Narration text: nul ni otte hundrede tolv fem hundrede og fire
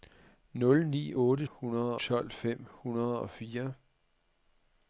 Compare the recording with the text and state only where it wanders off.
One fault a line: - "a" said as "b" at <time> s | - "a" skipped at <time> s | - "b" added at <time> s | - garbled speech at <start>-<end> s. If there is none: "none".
none